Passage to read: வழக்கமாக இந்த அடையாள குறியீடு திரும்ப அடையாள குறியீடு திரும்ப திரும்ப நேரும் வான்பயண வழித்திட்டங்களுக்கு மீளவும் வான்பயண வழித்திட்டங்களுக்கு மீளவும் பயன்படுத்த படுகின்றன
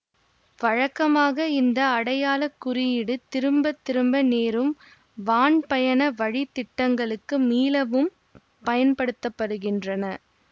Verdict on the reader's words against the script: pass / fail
fail